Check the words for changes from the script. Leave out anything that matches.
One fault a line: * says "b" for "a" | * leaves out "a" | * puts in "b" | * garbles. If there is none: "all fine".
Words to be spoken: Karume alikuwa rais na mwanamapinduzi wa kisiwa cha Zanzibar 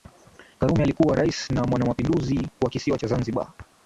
all fine